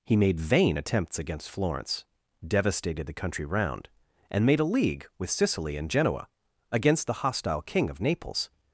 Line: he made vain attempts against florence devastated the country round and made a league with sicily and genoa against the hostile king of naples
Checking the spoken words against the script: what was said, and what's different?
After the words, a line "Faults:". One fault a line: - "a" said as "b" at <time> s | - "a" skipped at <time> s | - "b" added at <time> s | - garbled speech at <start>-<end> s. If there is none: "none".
he made vain attempts against florence devastated the country round and made a league with sicily and genoa against the hostile king of naples
Faults:
none